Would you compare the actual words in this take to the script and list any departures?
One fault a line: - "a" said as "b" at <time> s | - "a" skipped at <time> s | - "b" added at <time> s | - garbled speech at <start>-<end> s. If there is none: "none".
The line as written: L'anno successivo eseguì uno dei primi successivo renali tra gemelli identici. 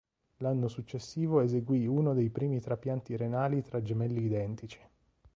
- "successivo" said as "trapianti" at 2.6 s